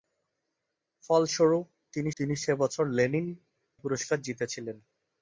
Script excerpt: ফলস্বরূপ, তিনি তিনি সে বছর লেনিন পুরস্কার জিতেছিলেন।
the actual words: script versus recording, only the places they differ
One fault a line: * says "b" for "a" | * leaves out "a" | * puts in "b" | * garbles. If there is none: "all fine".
all fine